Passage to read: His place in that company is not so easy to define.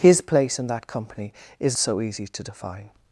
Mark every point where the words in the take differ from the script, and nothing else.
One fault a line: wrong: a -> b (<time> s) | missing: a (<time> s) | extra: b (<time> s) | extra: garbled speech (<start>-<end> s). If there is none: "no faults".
missing: not (1.8 s)